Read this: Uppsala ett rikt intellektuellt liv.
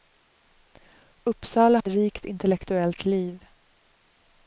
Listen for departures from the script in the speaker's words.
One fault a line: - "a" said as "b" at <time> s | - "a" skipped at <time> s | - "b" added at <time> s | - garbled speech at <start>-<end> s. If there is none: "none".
none